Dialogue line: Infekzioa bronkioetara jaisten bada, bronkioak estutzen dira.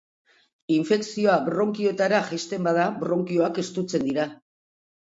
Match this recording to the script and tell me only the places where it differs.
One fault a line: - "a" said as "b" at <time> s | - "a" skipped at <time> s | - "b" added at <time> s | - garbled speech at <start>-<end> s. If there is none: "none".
none